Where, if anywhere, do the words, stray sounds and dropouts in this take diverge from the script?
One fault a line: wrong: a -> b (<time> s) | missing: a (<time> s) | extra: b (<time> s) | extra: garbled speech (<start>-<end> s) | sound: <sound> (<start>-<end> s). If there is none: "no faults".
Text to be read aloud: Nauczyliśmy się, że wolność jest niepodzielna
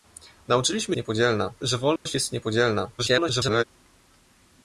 wrong: się -> niepodzielna (1.0 s)
sound: dropout (2.0-2.1 s)
extra: garbled speech (3.0-3.6 s)